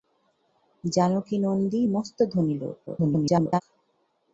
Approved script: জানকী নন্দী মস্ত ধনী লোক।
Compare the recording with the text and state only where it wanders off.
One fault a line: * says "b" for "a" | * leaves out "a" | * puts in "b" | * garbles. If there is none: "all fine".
* garbles